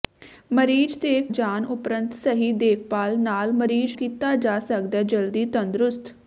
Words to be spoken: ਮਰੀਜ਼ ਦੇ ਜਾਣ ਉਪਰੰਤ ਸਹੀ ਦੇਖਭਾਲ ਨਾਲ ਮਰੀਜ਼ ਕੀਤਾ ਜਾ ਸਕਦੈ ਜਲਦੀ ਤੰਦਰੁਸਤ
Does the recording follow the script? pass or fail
pass